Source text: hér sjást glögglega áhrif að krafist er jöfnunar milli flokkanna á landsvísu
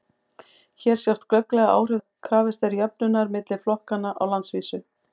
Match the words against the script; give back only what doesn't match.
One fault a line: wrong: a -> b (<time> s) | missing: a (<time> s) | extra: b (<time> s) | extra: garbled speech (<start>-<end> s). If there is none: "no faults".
no faults